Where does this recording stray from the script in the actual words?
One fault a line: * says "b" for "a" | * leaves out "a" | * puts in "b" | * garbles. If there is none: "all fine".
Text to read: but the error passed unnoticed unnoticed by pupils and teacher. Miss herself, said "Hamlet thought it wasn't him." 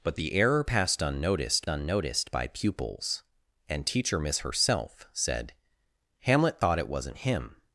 all fine